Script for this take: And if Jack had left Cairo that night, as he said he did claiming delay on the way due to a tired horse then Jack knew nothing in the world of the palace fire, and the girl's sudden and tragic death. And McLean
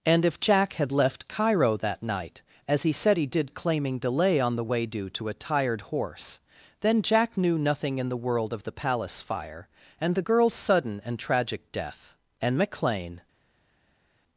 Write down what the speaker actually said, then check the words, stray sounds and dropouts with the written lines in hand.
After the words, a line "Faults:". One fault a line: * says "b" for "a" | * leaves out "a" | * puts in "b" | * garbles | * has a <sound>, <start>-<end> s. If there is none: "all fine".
And if Jack had left Cairo that night, as he said he did claiming delay on the way due to a tired horse then Jack knew nothing in the world of the palace fire, and the girl's sudden and tragic death. And McLean
Faults:
all fine